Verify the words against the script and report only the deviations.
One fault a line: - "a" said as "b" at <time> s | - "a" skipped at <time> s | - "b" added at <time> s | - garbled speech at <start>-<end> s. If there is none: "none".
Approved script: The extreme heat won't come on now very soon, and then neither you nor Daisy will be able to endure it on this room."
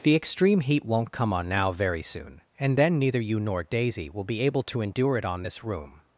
none